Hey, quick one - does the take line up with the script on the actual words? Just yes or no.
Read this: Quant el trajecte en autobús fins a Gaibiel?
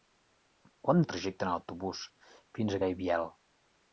yes